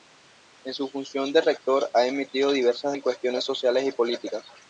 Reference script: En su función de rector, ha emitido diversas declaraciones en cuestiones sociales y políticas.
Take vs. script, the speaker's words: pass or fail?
fail